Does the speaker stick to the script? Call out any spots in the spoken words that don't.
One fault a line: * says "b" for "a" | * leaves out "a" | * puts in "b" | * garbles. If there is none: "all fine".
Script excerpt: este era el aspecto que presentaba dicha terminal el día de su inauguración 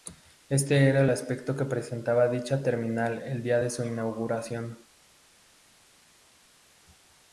all fine